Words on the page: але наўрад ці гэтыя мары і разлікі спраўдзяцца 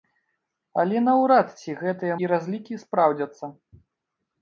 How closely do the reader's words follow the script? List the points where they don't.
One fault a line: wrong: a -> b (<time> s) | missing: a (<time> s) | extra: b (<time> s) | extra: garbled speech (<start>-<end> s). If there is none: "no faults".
missing: мары (2.1 s)